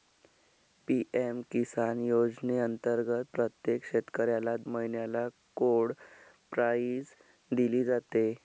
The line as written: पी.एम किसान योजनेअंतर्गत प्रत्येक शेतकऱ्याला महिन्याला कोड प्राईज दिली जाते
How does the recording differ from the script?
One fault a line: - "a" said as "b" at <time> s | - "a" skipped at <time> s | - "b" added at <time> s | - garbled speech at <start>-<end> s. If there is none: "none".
none